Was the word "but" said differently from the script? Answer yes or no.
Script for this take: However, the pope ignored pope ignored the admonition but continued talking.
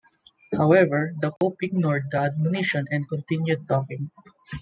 yes